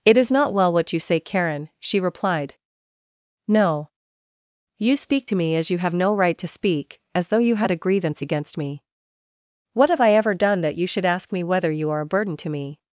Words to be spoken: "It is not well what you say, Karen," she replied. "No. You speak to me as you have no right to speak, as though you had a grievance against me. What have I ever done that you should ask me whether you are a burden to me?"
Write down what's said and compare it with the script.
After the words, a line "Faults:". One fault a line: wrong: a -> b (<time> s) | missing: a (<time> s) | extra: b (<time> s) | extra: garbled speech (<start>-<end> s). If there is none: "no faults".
"It is not well what you say, Karen," she replied. "No. You speak to me as you have no right to speak, as though you had a grievance against me. What have I ever done that you should ask me whether you are a burden to me?"
Faults:
no faults